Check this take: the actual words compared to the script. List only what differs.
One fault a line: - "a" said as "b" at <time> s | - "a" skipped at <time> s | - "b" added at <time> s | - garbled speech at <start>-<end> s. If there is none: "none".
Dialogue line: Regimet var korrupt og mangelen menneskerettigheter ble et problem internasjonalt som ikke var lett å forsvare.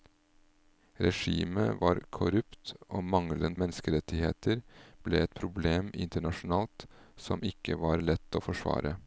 none